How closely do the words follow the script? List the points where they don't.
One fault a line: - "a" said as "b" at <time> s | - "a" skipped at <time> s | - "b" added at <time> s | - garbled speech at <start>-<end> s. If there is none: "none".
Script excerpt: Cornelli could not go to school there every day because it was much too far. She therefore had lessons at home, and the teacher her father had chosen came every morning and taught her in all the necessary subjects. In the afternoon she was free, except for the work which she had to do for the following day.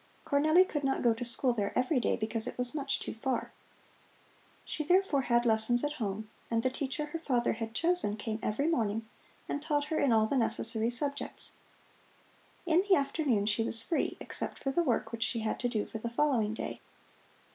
none